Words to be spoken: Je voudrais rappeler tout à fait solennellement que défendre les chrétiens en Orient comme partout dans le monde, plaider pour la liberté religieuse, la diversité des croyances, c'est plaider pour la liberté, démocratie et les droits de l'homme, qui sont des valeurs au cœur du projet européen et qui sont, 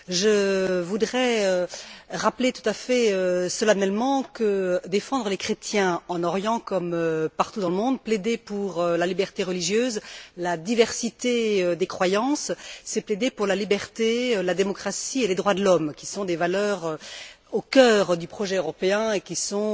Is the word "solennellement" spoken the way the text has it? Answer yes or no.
yes